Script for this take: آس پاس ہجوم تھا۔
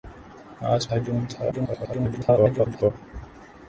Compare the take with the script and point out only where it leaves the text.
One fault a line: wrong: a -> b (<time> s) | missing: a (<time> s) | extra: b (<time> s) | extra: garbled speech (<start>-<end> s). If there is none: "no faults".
missing: پاس (0.8 s)
extra: garbled speech (1.5-2.9 s)